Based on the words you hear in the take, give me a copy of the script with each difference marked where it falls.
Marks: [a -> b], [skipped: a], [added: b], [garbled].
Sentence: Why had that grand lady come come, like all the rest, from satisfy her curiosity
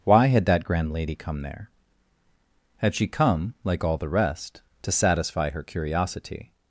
Why had that grand lady come [added: there Had she] come, like all the rest, [from -> to] satisfy her curiosity